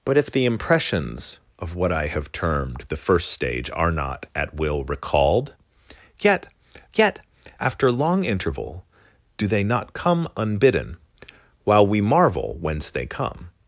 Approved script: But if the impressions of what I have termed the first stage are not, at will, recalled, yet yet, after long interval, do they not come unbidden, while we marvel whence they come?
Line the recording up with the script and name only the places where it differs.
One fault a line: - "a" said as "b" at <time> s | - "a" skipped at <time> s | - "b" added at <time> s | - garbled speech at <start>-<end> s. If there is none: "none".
none